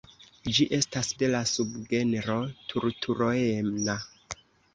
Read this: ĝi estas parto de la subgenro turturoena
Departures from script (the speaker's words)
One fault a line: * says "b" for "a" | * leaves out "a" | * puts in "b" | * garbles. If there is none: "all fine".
* leaves out "parto"